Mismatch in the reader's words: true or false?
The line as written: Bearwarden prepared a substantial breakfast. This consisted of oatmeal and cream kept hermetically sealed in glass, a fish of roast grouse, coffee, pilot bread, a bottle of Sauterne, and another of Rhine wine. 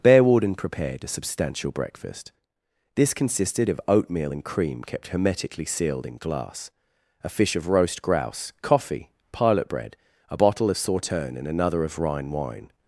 false